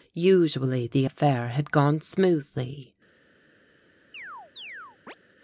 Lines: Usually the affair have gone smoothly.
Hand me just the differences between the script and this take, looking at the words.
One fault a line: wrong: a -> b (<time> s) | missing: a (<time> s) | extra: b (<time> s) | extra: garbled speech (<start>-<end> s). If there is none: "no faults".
wrong: have -> had (1.5 s)